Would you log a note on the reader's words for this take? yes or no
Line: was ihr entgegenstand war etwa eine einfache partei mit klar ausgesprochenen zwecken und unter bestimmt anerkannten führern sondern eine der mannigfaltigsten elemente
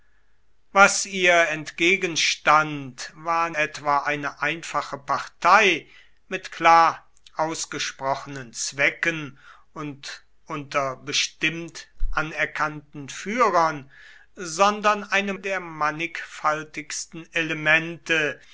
no